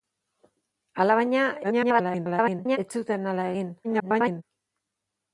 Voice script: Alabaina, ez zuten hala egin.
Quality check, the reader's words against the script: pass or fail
fail